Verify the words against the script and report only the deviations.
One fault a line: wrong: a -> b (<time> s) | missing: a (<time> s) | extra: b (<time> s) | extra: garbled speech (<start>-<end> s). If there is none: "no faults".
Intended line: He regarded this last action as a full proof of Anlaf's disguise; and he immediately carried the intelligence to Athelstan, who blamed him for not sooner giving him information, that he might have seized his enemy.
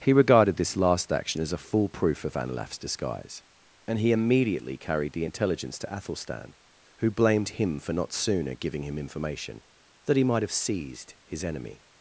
no faults